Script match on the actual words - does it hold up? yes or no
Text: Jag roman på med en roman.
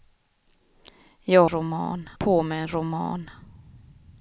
yes